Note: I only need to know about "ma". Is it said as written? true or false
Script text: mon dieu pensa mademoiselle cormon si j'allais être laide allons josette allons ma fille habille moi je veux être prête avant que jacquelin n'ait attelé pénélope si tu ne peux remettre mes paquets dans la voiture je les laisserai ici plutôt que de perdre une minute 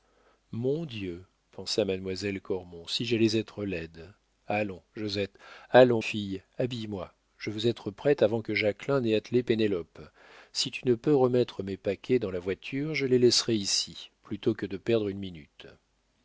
false